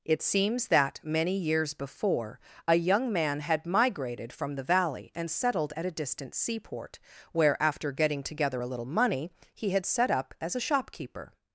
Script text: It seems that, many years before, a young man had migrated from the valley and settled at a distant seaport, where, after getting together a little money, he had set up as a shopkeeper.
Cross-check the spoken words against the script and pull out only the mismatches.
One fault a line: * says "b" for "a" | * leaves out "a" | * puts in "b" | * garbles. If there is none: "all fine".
all fine